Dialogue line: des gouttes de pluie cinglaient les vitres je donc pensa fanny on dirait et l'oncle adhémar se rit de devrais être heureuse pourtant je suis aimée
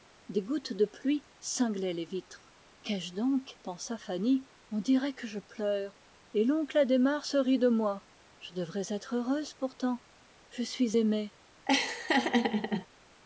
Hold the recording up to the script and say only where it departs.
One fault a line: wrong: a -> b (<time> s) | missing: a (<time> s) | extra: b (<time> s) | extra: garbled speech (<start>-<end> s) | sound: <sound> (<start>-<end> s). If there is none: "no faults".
extra: qu'ai (2.8 s)
extra: que je pleure (5.1 s)
extra: moi je (7.7 s)
sound: laugh (11.7-12.9 s)